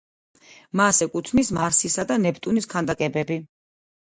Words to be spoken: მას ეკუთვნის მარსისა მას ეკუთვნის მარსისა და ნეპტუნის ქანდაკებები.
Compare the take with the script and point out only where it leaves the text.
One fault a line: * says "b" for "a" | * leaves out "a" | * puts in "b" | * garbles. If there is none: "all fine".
* leaves out "მას ეკუთვნის მარსისა"